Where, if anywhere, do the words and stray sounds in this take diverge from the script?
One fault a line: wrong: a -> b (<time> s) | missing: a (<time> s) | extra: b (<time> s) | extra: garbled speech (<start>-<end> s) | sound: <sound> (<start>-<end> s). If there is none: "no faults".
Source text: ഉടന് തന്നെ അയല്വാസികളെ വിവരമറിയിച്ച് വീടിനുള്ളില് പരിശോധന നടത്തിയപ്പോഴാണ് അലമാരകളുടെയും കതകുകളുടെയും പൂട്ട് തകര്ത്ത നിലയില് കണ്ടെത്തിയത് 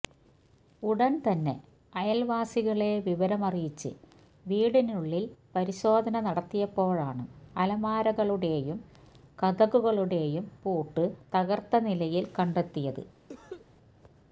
sound: cough (13.3-13.7 s)